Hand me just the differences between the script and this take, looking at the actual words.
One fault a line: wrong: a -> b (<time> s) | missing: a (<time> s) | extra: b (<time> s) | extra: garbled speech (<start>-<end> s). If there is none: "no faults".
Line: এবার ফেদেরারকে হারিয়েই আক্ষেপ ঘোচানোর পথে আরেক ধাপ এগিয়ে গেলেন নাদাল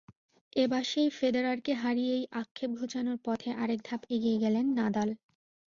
extra: সেই (0.8 s)